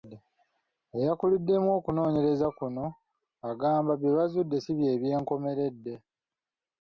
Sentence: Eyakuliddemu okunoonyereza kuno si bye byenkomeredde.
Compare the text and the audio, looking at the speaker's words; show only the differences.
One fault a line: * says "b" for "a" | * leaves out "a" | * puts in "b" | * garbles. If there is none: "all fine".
* puts in "agamba bye bazudde"